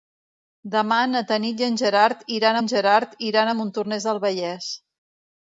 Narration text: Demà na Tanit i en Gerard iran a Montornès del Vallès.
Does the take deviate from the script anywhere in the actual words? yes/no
yes